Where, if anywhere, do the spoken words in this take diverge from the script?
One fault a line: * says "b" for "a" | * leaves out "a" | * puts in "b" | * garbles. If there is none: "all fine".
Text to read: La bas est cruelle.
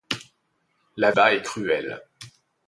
all fine